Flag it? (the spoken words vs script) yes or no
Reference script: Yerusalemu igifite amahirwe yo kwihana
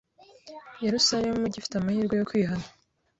no